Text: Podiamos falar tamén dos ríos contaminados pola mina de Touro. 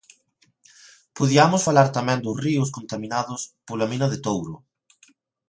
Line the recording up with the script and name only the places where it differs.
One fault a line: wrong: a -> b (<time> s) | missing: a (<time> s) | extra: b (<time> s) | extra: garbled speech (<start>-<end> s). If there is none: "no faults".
no faults